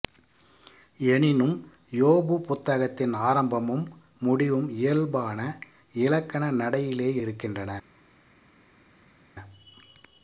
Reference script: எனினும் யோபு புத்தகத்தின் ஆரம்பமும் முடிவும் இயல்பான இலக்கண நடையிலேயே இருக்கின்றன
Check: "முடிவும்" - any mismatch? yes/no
no